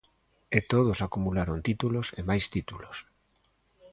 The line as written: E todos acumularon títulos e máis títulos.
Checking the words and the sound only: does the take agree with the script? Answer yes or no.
yes